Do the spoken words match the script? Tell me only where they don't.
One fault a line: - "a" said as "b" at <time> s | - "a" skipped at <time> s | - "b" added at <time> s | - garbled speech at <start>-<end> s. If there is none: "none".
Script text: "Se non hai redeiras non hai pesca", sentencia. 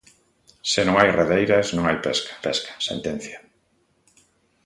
- "pesca" added at 2.5 s